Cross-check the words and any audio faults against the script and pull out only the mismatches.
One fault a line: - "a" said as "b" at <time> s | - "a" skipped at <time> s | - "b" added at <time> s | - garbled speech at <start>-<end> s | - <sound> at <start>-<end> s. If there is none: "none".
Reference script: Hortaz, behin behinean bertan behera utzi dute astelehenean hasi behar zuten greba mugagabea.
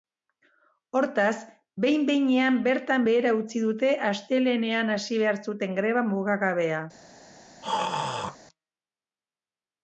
- throat clearing at 7.6-8.4 s